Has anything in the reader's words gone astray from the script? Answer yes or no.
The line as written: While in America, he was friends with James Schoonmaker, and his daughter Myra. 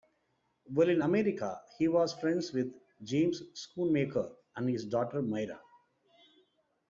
no